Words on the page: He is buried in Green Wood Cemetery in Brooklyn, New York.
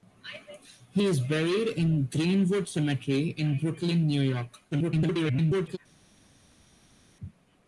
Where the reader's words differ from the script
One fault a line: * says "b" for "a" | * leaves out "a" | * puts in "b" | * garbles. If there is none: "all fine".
* garbles